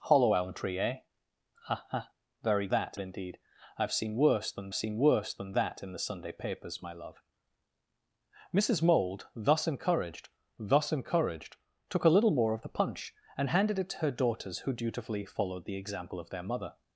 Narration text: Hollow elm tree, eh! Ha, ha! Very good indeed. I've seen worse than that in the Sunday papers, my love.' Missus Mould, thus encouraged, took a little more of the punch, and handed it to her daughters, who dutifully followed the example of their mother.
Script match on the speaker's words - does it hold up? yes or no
no